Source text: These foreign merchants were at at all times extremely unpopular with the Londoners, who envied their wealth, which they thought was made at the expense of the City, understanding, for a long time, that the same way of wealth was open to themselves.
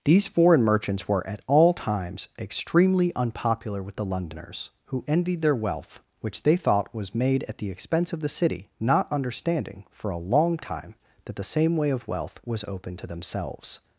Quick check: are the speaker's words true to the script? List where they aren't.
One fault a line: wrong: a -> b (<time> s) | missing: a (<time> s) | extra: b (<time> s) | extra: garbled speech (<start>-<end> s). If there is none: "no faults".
missing: at (1.4 s)
extra: not (8.8 s)